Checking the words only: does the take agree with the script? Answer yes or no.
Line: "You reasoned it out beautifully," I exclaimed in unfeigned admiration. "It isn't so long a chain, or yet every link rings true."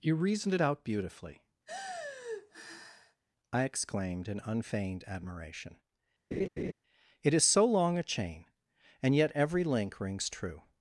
no